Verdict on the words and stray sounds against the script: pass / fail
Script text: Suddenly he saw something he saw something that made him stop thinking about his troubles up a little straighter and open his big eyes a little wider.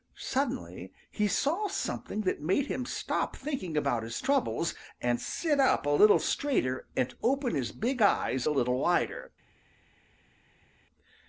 fail